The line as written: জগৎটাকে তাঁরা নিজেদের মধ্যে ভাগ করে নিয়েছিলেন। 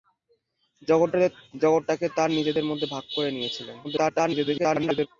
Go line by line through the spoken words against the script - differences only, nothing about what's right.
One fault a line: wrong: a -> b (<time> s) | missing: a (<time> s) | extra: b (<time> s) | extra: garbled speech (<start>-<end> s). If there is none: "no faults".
extra: garbled speech (3.8-5.1 s)